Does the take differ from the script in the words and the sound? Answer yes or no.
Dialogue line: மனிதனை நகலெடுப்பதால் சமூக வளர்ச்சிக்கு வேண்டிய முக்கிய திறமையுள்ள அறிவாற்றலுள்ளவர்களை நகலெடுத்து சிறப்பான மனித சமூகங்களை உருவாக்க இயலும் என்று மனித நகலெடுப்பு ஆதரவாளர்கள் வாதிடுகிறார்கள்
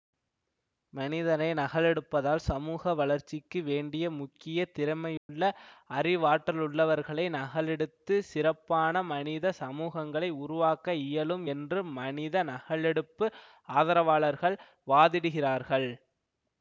yes